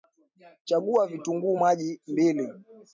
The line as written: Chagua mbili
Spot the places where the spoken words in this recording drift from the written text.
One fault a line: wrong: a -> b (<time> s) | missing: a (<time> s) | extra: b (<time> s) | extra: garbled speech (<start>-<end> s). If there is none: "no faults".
extra: vitunguu maji (1.1 s)